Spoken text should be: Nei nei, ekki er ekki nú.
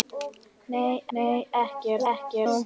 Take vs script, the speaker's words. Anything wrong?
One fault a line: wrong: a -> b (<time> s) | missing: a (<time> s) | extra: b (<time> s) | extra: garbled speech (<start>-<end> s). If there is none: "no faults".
no faults